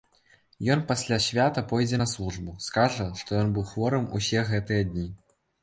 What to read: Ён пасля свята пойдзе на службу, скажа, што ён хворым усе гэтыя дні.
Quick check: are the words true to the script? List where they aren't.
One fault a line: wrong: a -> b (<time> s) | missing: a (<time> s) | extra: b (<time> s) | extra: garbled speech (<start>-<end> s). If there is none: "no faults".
extra: быў (3.6 s)